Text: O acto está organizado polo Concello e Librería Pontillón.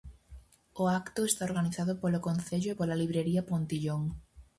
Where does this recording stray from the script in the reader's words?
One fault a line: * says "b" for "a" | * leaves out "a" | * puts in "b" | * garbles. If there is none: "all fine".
* puts in "pola"